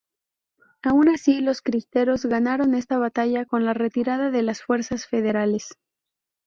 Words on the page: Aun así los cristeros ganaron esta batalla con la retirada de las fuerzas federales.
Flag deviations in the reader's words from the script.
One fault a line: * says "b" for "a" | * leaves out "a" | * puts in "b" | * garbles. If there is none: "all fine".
all fine